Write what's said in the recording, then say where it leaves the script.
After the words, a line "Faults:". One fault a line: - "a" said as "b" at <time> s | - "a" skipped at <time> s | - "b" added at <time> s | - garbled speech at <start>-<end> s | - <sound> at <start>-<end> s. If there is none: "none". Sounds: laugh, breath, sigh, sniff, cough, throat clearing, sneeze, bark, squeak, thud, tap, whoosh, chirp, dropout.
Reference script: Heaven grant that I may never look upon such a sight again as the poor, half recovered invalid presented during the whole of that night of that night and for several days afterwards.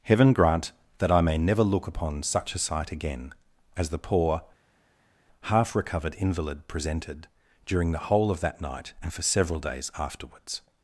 Heaven grant that I may never look upon such a sight again as the poor, half recovered invalid presented during the whole of that night and for several days afterwards.
Faults:
- "of that night" skipped at 8.9 s